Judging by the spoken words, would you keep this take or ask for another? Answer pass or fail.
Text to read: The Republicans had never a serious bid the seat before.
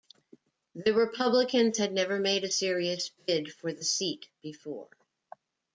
fail